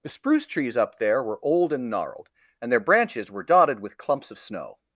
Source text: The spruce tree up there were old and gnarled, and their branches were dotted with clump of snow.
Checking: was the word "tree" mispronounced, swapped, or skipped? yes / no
yes